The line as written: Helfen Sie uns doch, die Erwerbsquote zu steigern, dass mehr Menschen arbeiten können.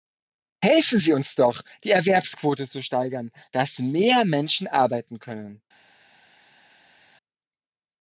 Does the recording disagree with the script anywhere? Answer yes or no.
no